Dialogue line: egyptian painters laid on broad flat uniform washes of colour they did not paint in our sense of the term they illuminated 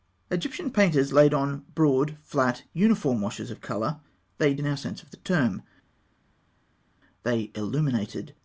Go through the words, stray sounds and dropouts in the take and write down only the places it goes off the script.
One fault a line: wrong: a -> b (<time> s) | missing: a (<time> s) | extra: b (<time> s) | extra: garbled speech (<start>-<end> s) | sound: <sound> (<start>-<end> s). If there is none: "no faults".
missing: did not paint (4.5 s)